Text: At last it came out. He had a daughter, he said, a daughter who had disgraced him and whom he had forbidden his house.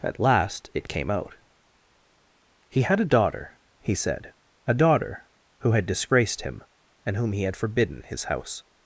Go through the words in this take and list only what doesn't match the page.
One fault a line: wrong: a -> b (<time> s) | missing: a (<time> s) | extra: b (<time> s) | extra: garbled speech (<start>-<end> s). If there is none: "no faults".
no faults